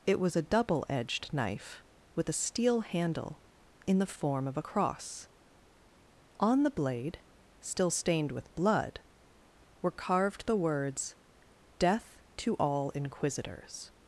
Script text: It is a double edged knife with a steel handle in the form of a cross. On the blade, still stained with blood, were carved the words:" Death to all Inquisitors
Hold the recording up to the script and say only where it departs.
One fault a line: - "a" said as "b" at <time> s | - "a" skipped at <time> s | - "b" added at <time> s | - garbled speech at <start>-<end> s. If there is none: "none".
- "is" said as "was" at 0.2 s